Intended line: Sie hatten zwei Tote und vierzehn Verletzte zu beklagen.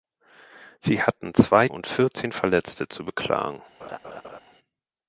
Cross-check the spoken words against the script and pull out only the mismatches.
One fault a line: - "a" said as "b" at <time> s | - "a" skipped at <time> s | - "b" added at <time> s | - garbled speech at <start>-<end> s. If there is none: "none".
- "Tote" skipped at 1.7 s